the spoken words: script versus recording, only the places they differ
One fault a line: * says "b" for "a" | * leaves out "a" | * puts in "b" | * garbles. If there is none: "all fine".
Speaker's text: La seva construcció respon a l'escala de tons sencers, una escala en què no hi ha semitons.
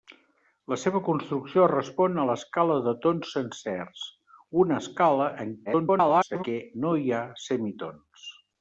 * garbles